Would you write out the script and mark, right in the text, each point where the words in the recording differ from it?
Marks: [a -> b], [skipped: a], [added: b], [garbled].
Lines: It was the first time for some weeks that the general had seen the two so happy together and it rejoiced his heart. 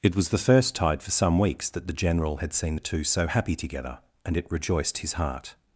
It was the first [time -> tide] for some weeks that the general had seen the two so happy together and it rejoiced his heart.